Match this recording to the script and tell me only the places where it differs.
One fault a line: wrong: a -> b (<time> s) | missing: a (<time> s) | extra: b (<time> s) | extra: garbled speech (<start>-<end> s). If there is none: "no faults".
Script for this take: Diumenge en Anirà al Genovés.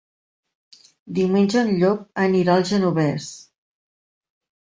extra: Llop (1.8 s)